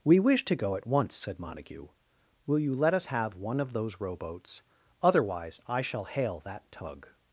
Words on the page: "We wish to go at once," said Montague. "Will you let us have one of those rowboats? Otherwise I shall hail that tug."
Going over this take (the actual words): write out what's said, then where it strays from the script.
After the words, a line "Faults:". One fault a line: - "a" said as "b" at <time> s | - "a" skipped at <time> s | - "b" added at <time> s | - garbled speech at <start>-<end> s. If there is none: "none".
"We wish to go at once," said Montague. "Will you let us have one of those rowboats? Otherwise I shall hail that tug."
Faults:
none